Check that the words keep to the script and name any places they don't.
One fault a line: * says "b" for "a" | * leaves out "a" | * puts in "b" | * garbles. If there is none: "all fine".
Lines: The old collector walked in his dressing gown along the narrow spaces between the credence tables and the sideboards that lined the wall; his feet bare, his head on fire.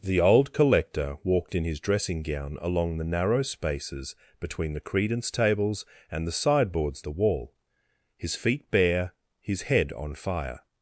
* leaves out "that lined"